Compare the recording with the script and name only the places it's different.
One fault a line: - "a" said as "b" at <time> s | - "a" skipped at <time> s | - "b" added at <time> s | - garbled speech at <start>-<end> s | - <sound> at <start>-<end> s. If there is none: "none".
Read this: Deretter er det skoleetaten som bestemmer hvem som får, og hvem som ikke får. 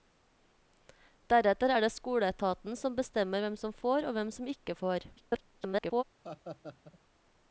- garbled speech at 5.2-6.0 s
- laugh at 6.2-7.0 s